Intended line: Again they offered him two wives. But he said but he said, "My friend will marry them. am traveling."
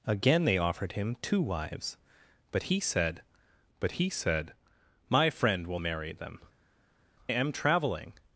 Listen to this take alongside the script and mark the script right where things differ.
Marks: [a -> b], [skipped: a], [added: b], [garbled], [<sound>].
Again they offered him two wives. But he said but he said, "My friend will marry them. am traveling."